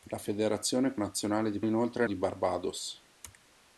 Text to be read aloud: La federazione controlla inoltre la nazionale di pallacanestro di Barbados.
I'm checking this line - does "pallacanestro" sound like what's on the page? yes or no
no